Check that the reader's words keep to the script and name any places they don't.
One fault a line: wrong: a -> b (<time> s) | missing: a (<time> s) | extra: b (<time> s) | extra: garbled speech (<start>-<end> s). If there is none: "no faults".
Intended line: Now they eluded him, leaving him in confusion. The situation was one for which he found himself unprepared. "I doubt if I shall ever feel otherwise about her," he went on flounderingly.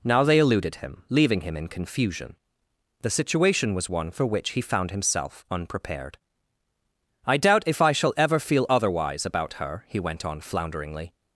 no faults